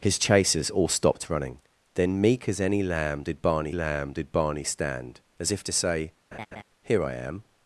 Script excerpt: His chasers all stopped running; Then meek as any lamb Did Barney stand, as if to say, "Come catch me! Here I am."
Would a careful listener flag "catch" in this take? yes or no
yes